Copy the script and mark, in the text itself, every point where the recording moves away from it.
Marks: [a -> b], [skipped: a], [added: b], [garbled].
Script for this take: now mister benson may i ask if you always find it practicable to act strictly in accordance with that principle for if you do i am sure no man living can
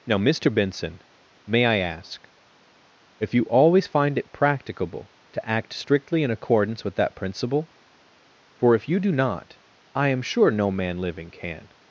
now mister benson may i ask if you always find it practicable to act strictly in accordance with that principle for if you do [added: not] i am sure no man living can